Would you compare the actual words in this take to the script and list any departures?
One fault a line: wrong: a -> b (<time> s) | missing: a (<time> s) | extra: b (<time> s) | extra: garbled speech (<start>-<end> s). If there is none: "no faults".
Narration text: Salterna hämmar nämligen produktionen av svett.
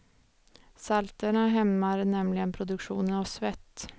no faults